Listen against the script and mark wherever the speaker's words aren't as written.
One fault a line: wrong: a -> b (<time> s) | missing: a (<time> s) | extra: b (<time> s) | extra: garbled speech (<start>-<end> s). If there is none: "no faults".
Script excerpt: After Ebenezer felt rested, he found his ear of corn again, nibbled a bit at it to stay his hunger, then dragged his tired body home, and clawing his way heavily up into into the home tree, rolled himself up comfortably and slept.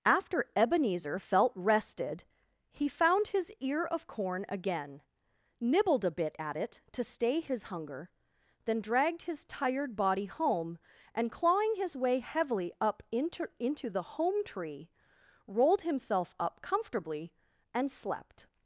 no faults